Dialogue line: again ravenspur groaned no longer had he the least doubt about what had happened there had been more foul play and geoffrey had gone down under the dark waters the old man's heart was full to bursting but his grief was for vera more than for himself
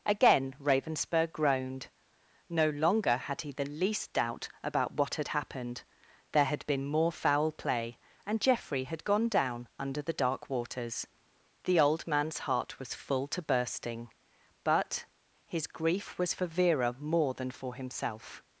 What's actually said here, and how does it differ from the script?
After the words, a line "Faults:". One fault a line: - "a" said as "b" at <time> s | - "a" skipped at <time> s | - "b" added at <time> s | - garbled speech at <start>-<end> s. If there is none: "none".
again ravenspur groaned no longer had he the least doubt about what had happened there had been more foul play and geoffrey had gone down under the dark waters the old man's heart was full to bursting but his grief was for vera more than for himself
Faults:
none